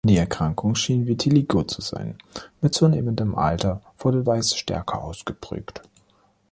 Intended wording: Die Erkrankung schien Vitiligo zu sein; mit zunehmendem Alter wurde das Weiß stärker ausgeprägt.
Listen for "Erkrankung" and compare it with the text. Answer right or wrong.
right